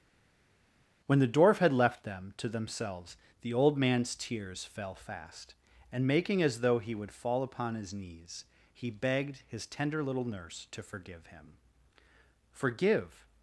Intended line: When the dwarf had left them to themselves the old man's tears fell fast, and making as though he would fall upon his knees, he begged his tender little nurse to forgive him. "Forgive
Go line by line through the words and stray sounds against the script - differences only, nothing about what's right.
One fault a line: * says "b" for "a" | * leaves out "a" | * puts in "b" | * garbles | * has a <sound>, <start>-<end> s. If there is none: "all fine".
all fine